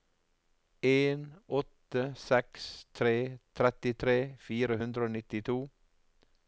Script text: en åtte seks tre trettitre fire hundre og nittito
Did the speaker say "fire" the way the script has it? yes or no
yes